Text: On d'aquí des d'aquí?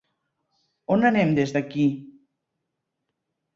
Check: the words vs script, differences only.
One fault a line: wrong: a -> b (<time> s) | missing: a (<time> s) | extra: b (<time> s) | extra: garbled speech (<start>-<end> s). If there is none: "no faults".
wrong: d'aquí -> anem (1.1 s)